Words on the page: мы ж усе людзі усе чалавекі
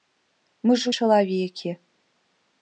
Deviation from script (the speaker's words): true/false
true